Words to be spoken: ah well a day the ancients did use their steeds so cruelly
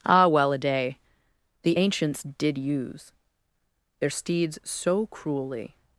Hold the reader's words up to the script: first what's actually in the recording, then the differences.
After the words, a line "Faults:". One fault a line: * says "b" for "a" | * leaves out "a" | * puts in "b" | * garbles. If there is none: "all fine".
ah well a day the ancients did use their steeds so cruelly
Faults:
all fine